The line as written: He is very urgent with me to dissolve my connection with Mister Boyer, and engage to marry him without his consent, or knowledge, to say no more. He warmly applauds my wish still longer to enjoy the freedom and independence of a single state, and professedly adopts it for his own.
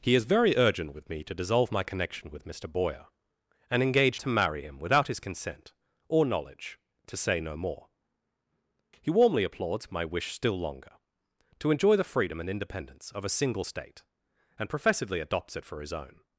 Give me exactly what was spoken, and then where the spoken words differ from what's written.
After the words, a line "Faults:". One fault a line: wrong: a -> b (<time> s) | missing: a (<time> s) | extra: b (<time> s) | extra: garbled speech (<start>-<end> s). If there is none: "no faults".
He is very urgent with me to dissolve my connection with Mister Boyer, and engage to marry him without his consent, or knowledge, to say no more. He warmly applauds my wish still longer to enjoy the freedom and independence of a single state, and professedly adopts it for his own.
Faults:
no faults